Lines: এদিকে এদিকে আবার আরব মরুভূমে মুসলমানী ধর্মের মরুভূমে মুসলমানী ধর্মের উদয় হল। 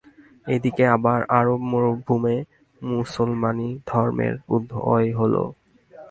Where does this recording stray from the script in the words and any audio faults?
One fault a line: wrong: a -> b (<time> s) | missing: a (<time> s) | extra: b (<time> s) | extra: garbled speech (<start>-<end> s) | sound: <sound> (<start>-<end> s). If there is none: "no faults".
missing: এদিকে (0.8 s)
missing: মরুভূমে মুসলমানী ধর্মের (4.3 s)